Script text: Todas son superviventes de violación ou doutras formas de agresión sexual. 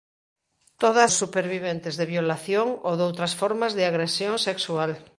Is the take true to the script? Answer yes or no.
no